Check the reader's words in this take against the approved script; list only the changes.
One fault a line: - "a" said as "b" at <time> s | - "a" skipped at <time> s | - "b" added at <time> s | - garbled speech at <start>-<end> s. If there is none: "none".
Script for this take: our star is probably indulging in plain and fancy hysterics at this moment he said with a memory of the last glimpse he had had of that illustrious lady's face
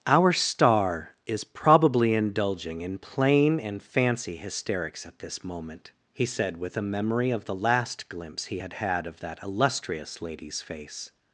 none